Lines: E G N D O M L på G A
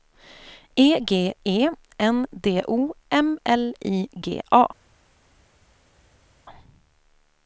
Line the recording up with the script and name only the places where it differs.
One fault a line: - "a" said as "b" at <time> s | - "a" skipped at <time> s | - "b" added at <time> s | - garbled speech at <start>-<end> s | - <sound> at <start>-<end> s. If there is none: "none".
- "E" added at 1.4 s
- "på" said as "I" at 3.9 s